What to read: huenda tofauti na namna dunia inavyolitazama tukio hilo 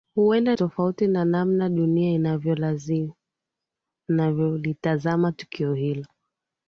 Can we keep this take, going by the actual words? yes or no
yes